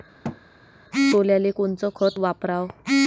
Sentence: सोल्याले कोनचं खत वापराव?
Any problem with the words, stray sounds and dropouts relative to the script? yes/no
yes